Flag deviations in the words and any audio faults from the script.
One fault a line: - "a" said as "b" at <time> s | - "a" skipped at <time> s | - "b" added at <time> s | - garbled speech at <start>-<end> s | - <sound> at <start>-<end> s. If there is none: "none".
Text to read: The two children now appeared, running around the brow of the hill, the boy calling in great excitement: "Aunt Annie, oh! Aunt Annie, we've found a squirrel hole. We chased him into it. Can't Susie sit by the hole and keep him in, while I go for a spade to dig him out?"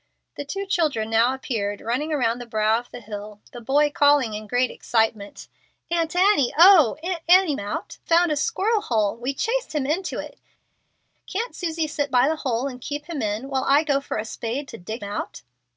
- "we've" said as "out" at 7.6 s
- "him" skipped at 15.0 s